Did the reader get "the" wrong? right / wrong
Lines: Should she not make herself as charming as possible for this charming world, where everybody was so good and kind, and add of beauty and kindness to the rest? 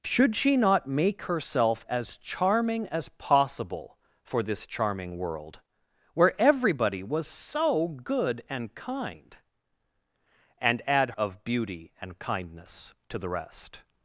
right